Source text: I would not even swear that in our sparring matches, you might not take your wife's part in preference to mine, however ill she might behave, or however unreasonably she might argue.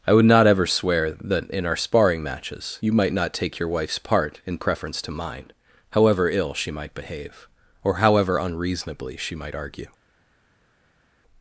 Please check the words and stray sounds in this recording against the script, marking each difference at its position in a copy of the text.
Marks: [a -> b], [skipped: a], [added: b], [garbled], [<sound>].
I would not [even -> ever] swear that in our sparring matches, you might not take your wife's part in preference to mine, however ill she might behave, or however unreasonably she might argue.